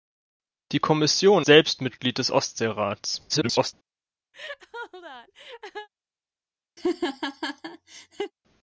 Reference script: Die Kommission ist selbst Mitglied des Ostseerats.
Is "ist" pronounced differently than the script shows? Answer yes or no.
yes